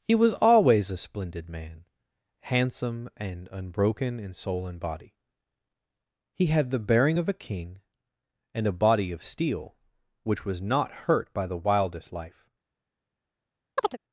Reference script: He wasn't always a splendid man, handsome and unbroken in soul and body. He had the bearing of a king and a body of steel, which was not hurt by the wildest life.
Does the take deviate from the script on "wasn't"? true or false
true